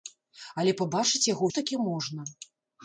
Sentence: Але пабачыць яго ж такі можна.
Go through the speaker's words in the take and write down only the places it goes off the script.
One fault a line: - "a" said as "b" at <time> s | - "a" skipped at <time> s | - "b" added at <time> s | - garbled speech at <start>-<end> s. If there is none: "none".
none